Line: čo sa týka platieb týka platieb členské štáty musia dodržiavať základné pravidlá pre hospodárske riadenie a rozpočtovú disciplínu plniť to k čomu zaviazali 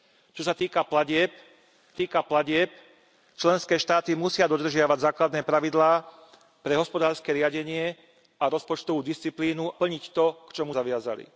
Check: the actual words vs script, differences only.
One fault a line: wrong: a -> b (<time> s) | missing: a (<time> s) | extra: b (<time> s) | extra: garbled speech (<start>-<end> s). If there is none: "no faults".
no faults